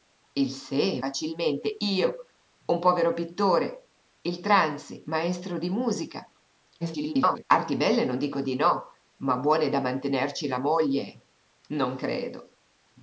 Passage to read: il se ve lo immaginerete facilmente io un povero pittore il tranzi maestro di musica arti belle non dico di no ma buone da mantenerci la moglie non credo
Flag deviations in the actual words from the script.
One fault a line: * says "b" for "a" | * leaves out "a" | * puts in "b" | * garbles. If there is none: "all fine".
* leaves out "ve lo immaginerete"
* garbles